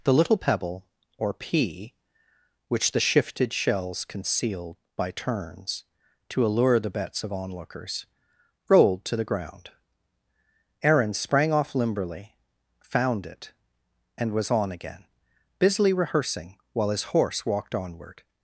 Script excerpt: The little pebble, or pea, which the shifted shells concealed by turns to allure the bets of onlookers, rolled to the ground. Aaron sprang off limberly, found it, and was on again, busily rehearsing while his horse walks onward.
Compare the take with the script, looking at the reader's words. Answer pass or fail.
fail